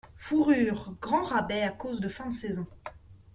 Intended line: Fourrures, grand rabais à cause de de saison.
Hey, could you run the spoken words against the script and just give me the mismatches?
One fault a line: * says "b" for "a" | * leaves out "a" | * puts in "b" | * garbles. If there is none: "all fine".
* puts in "fin"